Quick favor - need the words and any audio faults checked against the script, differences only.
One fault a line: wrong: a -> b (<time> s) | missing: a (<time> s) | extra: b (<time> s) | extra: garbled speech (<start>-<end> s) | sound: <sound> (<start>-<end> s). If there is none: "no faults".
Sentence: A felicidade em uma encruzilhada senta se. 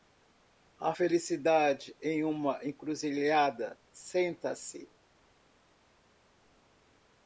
no faults